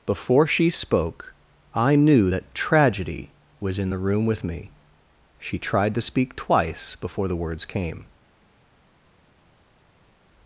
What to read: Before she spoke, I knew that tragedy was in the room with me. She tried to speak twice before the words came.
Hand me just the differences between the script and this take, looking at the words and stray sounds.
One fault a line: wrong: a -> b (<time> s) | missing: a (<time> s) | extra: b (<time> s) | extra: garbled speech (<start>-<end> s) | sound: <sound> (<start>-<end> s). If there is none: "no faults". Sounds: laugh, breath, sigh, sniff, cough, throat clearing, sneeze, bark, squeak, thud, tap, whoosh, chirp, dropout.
no faults